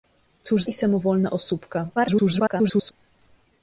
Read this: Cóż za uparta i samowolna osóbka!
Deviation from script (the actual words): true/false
true